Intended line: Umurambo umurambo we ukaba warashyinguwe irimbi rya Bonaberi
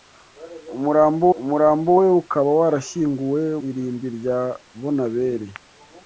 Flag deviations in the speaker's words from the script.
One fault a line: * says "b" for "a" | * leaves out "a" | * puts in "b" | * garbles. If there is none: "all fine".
all fine